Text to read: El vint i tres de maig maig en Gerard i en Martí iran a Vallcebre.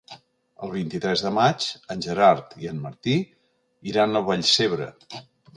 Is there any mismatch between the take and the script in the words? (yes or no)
yes